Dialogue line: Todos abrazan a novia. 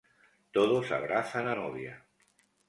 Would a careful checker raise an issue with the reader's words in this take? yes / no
no